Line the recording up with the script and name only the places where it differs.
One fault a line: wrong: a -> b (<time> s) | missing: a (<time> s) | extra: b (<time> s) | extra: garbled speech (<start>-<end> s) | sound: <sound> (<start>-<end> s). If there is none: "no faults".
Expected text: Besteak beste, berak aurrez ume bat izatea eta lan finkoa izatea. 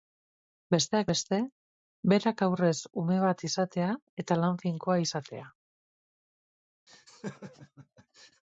sound: laugh (6.9-8.4 s)